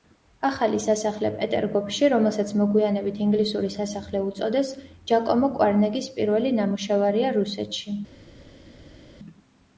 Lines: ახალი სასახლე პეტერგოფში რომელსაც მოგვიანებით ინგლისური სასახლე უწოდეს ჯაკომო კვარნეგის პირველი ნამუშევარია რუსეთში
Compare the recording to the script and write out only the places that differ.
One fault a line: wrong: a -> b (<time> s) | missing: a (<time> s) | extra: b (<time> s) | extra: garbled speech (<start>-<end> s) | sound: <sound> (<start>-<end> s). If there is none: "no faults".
no faults